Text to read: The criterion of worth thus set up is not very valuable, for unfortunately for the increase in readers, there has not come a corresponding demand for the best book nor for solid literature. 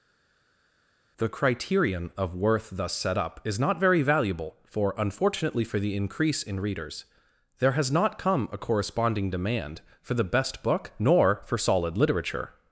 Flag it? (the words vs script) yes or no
no